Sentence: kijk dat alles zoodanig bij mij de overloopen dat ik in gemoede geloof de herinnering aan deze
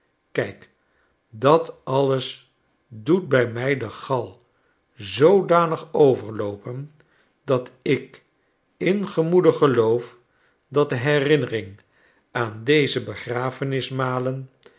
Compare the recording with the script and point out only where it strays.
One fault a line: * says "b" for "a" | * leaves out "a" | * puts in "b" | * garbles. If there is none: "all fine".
* says "doet" for "zoodanig"
* puts in "gal zoodanig"
* puts in "dat"